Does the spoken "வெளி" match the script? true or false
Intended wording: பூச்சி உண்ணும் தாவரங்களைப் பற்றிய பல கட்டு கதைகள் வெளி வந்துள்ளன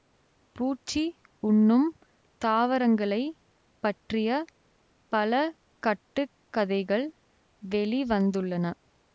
true